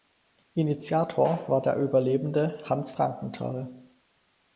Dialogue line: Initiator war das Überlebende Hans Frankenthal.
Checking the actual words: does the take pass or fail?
fail